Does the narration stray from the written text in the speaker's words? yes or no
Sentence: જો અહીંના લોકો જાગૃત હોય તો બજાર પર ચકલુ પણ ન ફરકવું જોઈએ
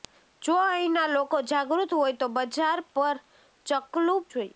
yes